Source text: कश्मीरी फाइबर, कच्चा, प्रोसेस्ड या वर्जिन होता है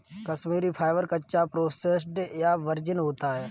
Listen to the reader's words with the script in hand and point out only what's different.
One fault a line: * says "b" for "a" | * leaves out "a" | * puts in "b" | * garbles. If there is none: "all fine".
all fine